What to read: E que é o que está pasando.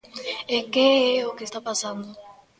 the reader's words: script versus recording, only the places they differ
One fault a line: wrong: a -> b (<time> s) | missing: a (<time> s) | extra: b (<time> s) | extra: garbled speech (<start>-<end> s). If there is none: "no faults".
no faults